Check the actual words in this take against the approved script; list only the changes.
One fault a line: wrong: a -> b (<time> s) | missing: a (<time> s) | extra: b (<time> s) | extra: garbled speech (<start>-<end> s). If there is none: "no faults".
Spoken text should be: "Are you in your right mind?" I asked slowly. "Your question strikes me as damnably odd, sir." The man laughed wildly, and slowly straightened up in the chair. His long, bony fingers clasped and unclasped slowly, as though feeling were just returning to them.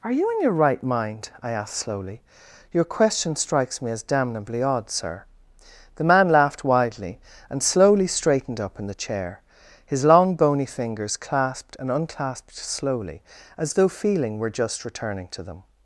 wrong: wildly -> widely (6.6 s)